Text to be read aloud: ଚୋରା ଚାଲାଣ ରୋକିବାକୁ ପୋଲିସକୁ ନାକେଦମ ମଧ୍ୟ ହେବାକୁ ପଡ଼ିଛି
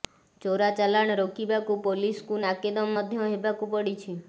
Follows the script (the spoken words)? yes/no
yes